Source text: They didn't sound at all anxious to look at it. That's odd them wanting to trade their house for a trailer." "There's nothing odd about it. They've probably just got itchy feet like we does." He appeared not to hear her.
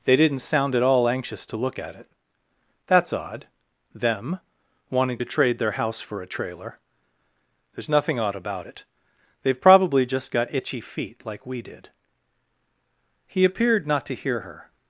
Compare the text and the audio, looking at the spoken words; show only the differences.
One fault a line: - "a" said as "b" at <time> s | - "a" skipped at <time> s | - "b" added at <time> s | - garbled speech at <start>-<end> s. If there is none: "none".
- "does" said as "did" at 11.6 s